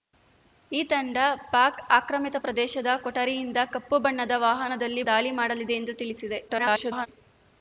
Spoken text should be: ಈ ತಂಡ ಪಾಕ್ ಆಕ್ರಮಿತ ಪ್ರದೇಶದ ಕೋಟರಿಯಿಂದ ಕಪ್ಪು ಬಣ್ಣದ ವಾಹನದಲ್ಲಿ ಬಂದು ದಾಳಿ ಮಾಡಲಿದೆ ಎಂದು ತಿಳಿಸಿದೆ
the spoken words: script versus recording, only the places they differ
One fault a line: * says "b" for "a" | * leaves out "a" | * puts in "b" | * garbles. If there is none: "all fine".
* leaves out "ಬಂದು"
* garbles